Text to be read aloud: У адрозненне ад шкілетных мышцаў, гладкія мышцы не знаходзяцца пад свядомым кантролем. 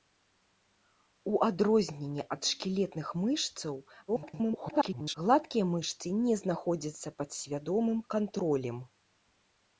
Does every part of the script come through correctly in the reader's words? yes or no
no